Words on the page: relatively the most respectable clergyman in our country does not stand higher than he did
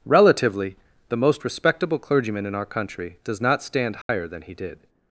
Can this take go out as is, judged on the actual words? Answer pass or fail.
pass